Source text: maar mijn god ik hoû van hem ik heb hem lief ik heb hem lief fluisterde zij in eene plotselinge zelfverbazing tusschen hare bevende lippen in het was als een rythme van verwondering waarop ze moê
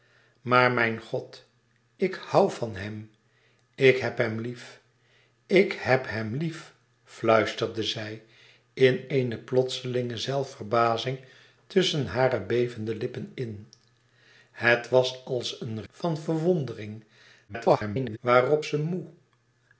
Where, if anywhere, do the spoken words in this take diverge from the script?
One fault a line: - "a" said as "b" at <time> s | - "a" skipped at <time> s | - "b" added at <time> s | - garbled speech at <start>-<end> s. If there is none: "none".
- "rythme" skipped at 15.8 s
- garbled speech at 17.5-18.2 s